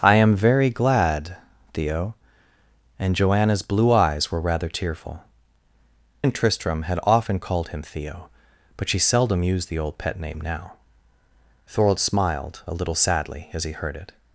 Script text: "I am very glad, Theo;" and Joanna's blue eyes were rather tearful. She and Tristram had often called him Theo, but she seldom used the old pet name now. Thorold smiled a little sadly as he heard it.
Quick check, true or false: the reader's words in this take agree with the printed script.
false